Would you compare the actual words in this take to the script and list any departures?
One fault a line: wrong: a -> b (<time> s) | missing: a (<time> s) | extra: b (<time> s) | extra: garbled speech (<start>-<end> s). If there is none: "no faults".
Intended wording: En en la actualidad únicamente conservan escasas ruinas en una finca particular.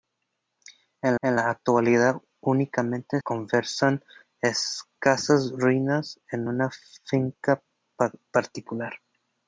no faults